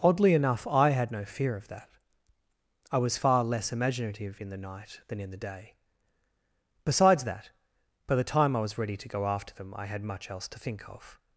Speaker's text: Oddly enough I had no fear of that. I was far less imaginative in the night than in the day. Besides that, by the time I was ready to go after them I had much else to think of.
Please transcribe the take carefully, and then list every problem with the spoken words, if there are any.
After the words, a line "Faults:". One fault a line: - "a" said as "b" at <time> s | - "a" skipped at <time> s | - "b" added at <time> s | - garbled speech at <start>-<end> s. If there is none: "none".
Oddly enough I had no fear of that. I was far less imaginative in the night than in the day. Besides that, by the time I was ready to go after them I had much else to think of.
Faults:
none